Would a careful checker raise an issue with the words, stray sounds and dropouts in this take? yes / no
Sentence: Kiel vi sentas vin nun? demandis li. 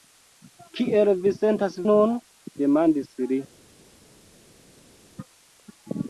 yes